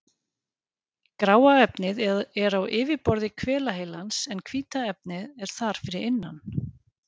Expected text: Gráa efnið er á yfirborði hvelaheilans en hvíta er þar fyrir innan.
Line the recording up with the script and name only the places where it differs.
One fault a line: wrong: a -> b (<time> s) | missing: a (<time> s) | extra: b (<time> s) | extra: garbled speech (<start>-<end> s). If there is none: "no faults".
extra: efnið (4.9 s)